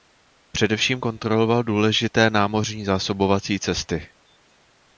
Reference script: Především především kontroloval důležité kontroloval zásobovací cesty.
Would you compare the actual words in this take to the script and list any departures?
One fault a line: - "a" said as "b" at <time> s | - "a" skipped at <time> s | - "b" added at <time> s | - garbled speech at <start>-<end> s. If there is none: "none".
- "především" skipped at 1.0 s
- "kontroloval" said as "námořní" at 2.3 s